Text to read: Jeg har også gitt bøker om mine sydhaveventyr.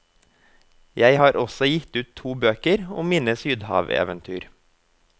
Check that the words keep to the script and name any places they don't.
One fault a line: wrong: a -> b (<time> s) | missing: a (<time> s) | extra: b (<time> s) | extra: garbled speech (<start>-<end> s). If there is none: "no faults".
extra: ut to (2.0 s)